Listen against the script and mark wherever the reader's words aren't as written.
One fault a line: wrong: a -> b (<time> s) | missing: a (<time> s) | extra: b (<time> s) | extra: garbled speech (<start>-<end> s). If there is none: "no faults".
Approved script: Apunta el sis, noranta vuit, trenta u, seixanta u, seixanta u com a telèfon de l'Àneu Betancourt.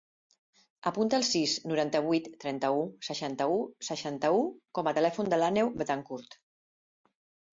no faults